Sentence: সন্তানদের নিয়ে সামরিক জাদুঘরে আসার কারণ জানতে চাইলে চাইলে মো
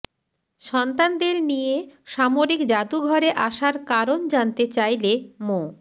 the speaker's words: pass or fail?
fail